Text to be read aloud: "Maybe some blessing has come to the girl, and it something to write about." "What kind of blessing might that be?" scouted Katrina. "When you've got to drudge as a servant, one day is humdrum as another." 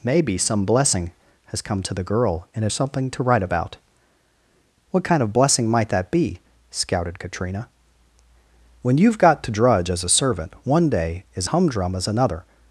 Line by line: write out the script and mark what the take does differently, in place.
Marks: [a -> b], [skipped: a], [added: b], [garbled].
"Maybe some blessing has come to the girl, and it something to write about." "What kind of blessing might that be?" scouted Katrina. "When you've got to drudge as a servant, one day is humdrum as another."